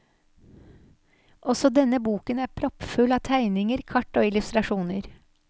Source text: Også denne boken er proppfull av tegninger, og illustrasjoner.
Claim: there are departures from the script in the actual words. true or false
true